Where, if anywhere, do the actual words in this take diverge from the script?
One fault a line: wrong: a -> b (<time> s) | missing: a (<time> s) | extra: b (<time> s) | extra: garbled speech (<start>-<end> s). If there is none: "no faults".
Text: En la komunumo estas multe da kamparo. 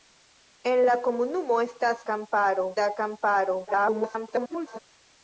wrong: multe -> kamparo (2.1 s)
extra: garbled speech (3.7-4.8 s)